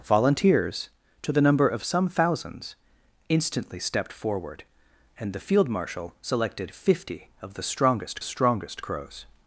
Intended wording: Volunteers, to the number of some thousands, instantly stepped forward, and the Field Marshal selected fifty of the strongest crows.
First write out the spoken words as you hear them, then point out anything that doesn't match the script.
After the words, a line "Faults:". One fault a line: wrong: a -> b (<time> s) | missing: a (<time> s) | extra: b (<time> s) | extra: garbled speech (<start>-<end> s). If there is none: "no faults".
Volunteers, to the number of some thousands, instantly stepped forward, and the Field Marshal selected fifty of the strongest strongest crows.
Faults:
extra: strongest (8.2 s)